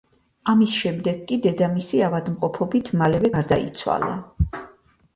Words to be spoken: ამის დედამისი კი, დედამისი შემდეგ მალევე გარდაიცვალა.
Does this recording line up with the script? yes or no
no